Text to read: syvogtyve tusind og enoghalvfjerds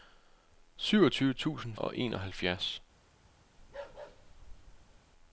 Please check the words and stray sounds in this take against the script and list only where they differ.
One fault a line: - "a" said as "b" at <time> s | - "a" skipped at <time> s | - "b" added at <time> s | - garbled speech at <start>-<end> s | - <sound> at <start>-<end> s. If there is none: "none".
- bark at 3.6-5.0 s